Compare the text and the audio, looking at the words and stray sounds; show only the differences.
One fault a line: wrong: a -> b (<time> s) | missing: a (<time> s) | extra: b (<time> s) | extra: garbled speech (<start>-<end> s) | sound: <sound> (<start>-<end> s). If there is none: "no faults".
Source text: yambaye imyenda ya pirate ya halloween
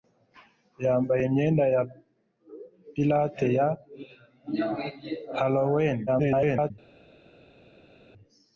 extra: garbled speech (6.1-6.7 s)